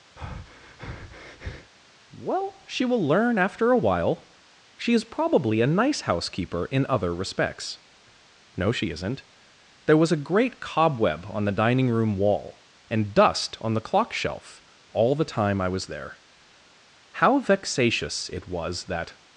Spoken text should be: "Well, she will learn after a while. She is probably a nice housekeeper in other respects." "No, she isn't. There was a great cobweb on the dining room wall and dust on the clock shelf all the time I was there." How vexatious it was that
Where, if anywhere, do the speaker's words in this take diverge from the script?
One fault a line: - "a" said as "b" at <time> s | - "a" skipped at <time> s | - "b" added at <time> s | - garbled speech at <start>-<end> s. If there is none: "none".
none